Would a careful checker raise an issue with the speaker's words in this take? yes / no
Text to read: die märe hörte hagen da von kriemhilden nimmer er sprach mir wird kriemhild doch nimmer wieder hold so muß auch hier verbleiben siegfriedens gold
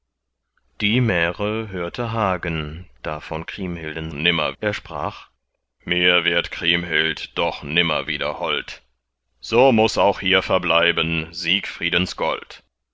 no